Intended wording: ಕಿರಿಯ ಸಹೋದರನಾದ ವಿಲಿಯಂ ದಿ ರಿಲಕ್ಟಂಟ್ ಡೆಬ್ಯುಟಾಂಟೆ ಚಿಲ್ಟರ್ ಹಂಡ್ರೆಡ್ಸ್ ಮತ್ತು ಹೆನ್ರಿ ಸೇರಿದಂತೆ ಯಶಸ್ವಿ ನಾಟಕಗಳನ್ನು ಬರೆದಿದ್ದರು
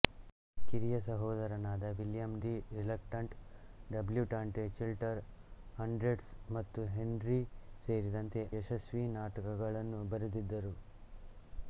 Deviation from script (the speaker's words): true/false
false